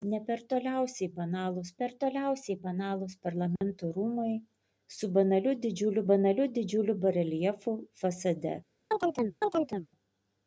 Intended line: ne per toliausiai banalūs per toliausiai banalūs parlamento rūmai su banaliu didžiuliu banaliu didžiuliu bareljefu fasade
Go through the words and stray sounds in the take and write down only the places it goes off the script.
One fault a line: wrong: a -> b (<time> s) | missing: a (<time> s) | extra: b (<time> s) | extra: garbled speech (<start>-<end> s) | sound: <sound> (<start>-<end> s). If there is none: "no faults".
sound: dropout (3.6-3.6 s)
sound: chirp (8.9-9.9 s)